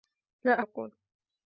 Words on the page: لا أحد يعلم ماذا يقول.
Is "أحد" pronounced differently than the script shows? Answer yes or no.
yes